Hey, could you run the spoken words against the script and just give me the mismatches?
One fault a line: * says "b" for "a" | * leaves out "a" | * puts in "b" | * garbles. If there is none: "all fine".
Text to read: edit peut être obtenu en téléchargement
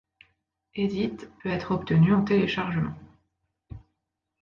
all fine